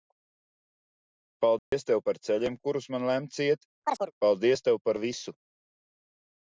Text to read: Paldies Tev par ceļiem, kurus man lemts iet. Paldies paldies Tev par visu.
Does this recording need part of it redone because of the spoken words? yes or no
yes